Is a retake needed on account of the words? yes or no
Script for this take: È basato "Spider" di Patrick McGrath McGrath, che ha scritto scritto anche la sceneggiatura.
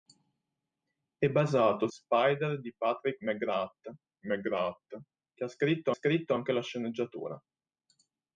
no